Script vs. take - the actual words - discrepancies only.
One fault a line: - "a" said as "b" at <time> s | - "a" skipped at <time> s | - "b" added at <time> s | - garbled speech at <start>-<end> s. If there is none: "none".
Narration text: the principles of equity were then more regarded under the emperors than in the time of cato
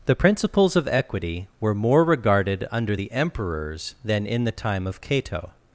- "then" skipped at 1.7 s